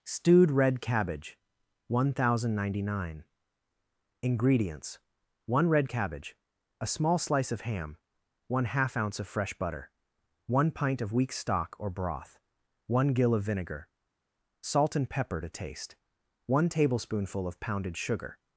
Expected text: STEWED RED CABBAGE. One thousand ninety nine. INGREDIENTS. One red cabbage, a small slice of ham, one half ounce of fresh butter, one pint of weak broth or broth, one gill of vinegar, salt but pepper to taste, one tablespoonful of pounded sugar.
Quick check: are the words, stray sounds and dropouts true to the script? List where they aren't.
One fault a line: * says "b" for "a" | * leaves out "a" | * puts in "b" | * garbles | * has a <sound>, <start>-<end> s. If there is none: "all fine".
* says "stock" for "broth"
* says "and" for "but"